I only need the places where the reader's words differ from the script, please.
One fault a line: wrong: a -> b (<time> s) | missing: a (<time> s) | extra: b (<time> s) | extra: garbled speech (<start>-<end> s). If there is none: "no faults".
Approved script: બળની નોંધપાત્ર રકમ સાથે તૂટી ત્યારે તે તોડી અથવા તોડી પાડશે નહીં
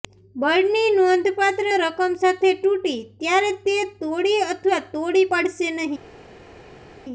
no faults